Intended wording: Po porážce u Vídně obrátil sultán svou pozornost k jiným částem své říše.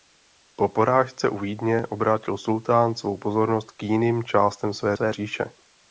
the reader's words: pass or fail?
fail